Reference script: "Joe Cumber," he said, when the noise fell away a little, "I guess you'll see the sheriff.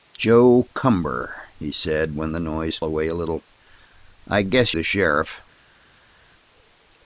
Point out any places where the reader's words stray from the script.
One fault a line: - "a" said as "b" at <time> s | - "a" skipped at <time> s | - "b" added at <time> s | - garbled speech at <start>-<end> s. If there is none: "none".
- "fell" skipped at 2.8 s
- "you'll see" skipped at 4.7 s